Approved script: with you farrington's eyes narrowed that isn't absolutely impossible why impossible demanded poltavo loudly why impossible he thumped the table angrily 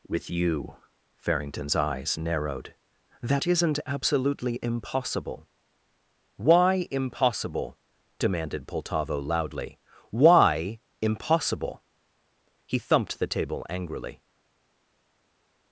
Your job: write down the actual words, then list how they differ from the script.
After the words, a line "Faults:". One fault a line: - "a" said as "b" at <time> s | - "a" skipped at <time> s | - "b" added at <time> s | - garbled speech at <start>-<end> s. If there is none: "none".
with you farrington's eyes narrowed that isn't absolutely impossible why impossible demanded poltavo loudly why impossible he thumped the table angrily
Faults:
none